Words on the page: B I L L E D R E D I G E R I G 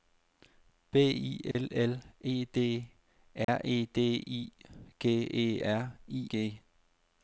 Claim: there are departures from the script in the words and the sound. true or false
true